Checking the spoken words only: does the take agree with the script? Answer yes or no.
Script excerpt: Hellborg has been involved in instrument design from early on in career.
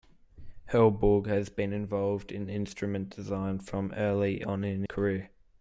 yes